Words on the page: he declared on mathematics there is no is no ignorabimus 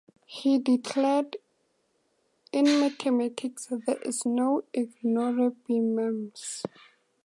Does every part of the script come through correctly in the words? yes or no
no